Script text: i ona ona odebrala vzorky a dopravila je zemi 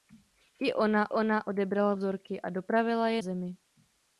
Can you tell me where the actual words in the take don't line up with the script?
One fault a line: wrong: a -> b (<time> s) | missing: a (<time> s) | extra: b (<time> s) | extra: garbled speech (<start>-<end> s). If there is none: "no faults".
no faults